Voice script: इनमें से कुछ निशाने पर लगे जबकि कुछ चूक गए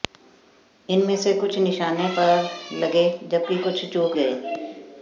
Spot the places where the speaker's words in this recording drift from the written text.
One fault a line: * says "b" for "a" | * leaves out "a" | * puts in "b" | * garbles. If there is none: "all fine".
all fine